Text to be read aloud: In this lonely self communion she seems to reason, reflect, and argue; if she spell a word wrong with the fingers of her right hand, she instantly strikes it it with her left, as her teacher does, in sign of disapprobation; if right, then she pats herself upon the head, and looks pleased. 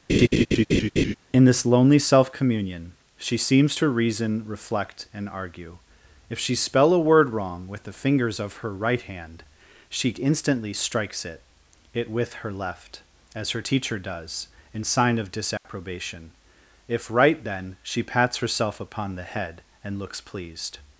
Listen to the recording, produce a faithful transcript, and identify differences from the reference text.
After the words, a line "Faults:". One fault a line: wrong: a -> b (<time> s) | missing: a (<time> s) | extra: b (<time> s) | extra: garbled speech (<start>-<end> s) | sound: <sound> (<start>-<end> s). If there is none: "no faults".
In this lonely self communion she seems to reason, reflect, and argue; if she spell a word wrong with the fingers of her right hand, she instantly strikes it it with her left, as her teacher does, in sign of disapprobation; if right, then she pats herself upon the head, and looks pleased.
Faults:
sound: laugh (0.1-1.2 s)
sound: dropout (15.6-15.6 s)